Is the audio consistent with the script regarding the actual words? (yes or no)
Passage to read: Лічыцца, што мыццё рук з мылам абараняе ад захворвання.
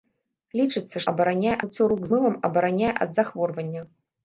no